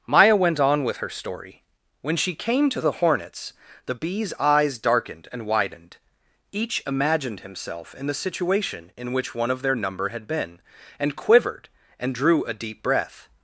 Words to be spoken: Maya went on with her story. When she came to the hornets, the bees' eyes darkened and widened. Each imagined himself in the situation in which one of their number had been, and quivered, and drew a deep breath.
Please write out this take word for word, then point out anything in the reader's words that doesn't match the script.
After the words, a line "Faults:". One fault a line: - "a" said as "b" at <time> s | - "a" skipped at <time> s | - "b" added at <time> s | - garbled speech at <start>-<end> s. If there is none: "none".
Maya went on with her story. When she came to the hornets, the bees' eyes darkened and widened. Each imagined himself in the situation in which one of their number had been, and quivered, and drew a deep breath.
Faults:
none